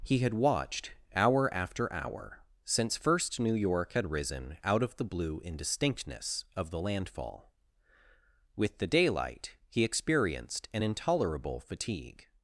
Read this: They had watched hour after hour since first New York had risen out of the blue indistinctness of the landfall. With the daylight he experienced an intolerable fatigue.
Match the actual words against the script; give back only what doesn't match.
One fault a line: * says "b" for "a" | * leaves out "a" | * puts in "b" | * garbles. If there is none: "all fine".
* says "He" for "They"